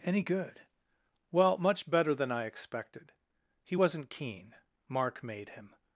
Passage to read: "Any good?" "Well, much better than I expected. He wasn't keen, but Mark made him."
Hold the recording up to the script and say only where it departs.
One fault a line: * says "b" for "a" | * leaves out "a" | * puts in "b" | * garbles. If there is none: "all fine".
* leaves out "but"